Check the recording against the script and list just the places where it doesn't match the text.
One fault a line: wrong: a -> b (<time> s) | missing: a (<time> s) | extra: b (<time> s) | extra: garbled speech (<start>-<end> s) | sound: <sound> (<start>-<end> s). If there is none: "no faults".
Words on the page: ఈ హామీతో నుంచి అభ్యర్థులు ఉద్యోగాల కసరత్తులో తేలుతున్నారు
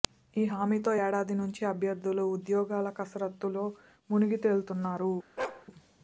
extra: ఏడాది (1.0 s)
extra: మునిగి (4.1 s)
sound: bark (5.4-5.7 s)